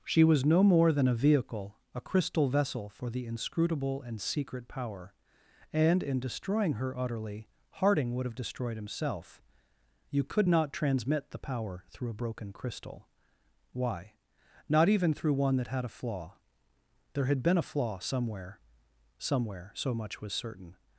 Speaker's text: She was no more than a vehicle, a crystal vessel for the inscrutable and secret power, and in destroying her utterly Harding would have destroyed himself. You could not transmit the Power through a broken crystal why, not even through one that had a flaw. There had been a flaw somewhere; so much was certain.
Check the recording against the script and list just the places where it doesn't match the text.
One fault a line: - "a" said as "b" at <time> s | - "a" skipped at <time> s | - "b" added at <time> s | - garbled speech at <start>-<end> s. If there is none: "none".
- "somewhere" added at 19.2 s